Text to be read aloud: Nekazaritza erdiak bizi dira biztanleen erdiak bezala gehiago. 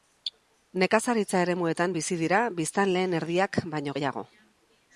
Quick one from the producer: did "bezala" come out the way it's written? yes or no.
no